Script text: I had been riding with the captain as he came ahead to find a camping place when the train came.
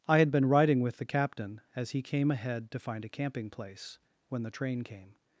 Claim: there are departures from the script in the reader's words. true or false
false